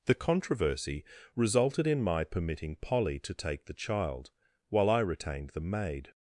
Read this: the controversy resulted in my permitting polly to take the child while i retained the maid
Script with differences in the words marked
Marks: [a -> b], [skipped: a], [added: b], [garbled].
the controversy resulted in my permitting polly to take the child while i retained the maid